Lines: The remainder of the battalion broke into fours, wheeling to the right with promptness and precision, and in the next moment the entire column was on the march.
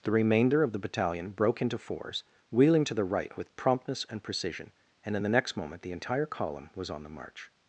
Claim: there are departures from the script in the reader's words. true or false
false